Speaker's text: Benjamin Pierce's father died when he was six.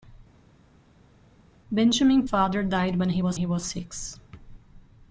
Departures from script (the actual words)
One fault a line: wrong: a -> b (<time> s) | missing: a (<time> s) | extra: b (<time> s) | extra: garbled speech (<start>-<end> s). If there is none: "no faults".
missing: Pierce's (2.3 s)
extra: he was (3.3 s)